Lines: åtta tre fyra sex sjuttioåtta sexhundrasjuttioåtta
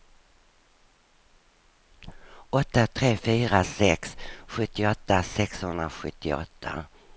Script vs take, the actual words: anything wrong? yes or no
no